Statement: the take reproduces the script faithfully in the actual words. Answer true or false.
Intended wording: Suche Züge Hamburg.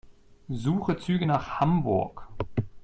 false